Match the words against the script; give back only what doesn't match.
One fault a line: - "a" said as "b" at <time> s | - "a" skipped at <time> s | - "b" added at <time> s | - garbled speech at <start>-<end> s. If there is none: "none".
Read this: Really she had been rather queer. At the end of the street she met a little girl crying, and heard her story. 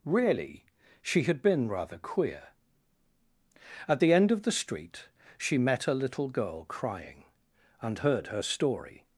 none